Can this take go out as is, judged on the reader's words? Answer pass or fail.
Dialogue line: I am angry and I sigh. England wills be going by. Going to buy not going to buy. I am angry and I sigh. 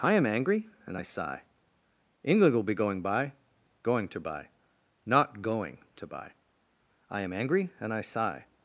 fail